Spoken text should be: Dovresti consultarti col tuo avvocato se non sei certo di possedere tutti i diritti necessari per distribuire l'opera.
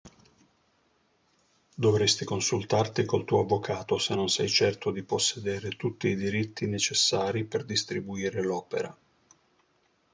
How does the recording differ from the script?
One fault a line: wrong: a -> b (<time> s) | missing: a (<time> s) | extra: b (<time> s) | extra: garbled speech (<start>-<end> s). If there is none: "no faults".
no faults